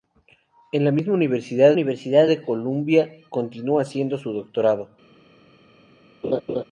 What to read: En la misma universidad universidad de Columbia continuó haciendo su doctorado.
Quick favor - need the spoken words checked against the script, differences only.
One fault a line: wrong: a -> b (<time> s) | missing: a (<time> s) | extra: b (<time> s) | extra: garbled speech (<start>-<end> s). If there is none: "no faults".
no faults